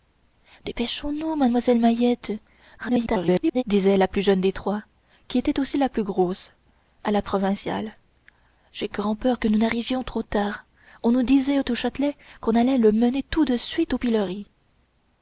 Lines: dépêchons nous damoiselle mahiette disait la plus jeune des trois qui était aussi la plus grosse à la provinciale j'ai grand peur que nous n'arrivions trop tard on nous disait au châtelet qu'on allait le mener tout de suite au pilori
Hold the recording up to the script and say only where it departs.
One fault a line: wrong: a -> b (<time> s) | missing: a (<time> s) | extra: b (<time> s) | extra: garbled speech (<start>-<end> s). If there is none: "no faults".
extra: garbled speech (2.8-3.6 s)